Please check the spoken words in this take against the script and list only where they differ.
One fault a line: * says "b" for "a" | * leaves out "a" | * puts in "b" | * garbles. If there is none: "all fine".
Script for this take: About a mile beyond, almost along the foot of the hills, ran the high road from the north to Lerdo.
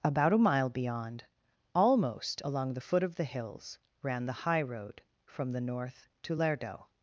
all fine